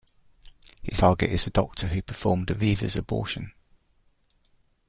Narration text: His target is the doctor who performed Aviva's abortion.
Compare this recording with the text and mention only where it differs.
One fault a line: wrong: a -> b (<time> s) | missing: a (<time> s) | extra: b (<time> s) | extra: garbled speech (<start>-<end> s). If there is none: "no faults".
no faults